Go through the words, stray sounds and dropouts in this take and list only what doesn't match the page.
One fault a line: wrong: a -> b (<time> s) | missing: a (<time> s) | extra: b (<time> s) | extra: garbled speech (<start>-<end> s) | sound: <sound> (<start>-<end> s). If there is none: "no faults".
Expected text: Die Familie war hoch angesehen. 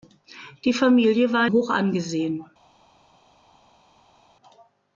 no faults